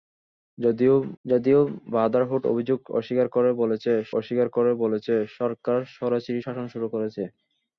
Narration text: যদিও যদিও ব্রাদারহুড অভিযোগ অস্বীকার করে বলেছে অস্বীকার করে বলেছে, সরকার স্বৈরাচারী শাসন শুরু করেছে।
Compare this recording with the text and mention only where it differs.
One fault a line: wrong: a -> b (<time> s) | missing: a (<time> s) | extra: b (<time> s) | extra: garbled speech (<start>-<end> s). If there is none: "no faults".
no faults